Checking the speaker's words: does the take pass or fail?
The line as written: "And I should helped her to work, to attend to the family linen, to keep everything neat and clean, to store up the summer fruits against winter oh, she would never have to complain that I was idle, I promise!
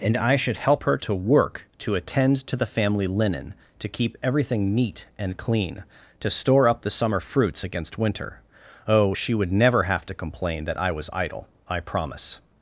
fail